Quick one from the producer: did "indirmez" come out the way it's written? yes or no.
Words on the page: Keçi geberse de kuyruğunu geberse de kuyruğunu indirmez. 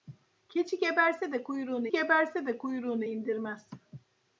yes